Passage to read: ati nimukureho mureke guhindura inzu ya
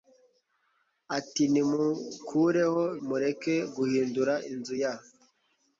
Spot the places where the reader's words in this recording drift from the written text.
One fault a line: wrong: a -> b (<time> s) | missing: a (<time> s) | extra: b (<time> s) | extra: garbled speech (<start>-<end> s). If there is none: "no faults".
no faults